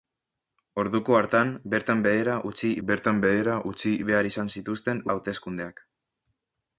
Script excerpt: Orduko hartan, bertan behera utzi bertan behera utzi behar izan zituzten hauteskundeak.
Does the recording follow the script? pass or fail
pass